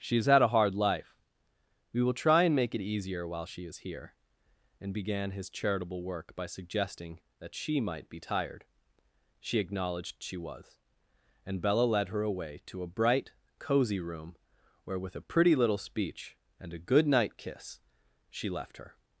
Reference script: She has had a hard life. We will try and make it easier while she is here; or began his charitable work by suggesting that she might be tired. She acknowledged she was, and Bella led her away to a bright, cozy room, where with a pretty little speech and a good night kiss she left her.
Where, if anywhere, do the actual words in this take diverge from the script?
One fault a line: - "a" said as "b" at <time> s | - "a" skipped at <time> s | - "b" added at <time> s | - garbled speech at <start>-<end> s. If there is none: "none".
- "or" said as "and" at 4.8 s